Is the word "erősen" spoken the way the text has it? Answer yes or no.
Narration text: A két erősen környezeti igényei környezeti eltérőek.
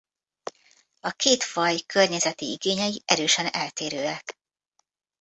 no